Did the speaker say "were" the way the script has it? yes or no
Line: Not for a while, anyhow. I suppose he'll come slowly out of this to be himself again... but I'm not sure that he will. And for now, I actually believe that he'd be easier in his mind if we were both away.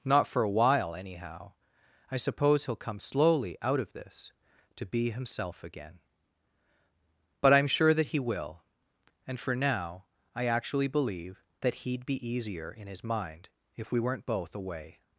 no